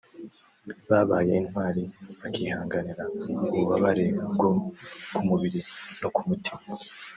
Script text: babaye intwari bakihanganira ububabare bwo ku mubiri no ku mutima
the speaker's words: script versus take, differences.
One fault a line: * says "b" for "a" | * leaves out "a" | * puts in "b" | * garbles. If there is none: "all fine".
all fine